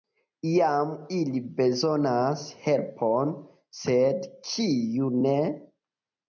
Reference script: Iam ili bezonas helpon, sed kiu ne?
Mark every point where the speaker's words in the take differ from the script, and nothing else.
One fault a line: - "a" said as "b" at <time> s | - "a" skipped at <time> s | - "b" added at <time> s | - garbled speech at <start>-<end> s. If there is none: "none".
none